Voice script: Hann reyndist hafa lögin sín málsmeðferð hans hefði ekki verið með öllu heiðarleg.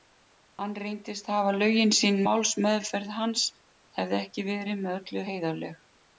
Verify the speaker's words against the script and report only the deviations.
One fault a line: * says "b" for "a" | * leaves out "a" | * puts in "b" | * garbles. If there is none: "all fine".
all fine